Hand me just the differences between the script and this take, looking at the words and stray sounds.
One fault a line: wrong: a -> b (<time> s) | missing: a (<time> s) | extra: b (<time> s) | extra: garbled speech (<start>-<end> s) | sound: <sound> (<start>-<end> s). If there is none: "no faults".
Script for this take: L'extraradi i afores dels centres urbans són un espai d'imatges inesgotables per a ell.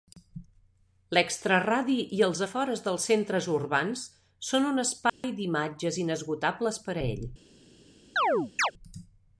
extra: els (2.3 s)
sound: dropout (5.1-5.2 s)
sound: chirp (8.2-8.7 s)